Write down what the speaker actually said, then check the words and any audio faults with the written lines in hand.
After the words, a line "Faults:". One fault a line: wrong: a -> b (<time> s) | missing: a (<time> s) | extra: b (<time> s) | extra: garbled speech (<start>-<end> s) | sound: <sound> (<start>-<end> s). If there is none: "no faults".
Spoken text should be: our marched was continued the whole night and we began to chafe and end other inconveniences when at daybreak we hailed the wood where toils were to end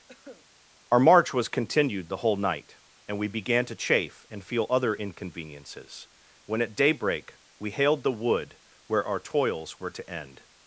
our march was continued the whole night and we began to chafe and feel other inconveniences when at daybreak we hailed the wood where our toils were to end
Faults:
sound: cough (0.1-0.5 s)
wrong: marched -> march (1.0 s)
wrong: end -> feel (4.4 s)
extra: our (9.0 s)